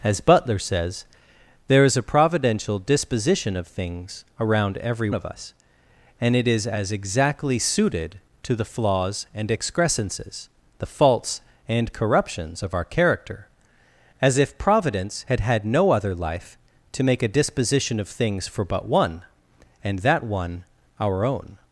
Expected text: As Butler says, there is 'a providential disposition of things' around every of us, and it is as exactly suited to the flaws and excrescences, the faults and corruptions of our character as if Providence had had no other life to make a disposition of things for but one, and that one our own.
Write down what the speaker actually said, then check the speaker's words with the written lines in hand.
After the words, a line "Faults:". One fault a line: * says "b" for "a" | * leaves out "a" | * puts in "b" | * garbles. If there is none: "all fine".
As Butler says, there is 'a providential disposition of things' around every of us, and it is as exactly suited to the flaws and excrescences, the faults and corruptions of our character as if Providence had had no other life to make a disposition of things for but one, and that one our own.
Faults:
all fine